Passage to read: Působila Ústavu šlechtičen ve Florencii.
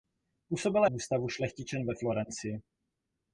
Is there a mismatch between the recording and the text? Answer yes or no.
no